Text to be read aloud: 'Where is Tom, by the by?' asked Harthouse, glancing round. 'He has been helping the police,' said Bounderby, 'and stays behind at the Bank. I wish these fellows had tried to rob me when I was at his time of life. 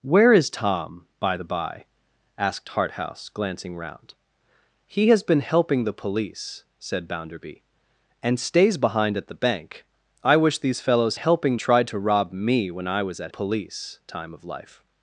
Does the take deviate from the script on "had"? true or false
true